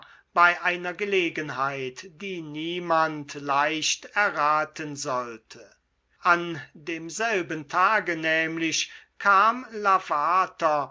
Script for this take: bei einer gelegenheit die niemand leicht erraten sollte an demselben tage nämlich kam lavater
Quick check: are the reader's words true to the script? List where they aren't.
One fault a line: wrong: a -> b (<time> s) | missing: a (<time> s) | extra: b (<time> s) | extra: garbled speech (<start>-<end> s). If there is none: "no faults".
no faults